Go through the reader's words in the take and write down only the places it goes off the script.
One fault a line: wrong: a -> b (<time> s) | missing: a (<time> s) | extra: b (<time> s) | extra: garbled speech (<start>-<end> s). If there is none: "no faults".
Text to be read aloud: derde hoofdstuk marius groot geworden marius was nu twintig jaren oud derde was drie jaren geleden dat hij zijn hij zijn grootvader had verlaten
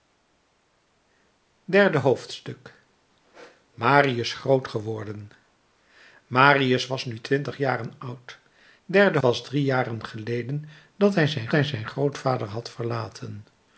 no faults